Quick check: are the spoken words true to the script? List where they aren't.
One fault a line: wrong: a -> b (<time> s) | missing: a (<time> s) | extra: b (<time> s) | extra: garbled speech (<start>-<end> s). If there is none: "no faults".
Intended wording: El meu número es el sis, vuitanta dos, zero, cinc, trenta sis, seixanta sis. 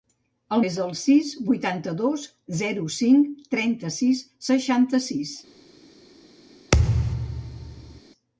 missing: meu número (0.6 s)